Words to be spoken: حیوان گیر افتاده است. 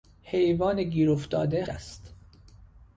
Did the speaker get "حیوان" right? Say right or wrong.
right